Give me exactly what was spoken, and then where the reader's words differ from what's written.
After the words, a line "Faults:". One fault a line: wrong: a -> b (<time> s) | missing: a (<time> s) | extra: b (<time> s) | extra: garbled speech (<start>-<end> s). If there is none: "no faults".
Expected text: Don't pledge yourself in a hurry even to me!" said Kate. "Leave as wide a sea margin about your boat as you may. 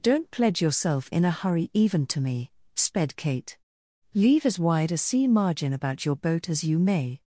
Don't pledge yourself in a hurry even to me!" sped Kate. "Leave as wide a sea margin about your boat as you may.
Faults:
wrong: said -> sped (2.8 s)